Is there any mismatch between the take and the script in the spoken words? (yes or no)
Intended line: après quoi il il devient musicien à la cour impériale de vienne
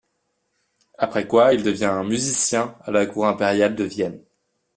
yes